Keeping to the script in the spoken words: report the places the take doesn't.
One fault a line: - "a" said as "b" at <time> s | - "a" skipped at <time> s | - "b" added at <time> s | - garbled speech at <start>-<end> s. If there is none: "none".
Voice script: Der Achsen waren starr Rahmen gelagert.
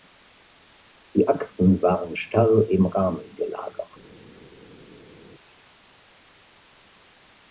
- "Der" said as "Die" at 1.1 s
- "im" added at 2.7 s